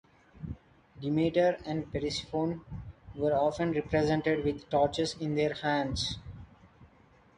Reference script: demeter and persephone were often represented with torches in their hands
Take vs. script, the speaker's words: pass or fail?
pass